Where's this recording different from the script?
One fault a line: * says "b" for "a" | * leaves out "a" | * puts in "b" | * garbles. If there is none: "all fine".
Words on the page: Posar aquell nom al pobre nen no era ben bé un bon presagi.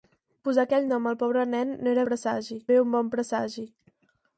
* says "presagi" for "ben"